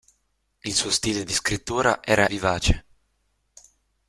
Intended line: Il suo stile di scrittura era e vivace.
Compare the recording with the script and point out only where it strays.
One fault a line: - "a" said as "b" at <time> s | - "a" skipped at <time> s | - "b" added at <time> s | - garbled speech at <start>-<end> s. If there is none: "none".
none